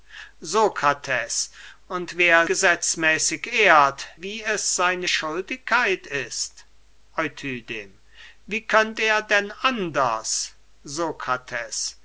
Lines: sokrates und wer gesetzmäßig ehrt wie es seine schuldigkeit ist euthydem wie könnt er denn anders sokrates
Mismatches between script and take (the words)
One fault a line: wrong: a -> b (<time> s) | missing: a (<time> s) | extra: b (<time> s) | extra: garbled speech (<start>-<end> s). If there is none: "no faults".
no faults